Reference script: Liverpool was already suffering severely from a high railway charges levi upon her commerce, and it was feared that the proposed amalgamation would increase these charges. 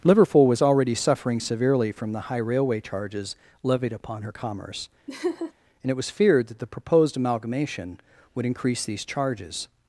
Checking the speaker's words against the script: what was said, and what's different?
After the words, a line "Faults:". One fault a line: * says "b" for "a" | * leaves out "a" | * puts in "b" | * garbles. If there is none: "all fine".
Liverpool was already suffering severely from the high railway charges levied upon her commerce, and it was feared that the proposed amalgamation would increase these charges.
Faults:
* says "the" for "a"
* says "levied" for "levi"